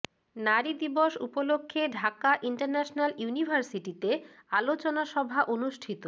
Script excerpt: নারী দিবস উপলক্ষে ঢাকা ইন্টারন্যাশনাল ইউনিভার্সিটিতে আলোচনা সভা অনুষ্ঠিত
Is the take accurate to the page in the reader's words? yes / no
yes